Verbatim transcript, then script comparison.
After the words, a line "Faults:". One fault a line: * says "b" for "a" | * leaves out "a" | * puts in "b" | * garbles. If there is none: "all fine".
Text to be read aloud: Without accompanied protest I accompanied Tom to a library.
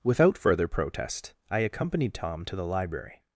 Without further protest I accompanied Tom to the library.
Faults:
* says "further" for "accompanied"
* says "the" for "a"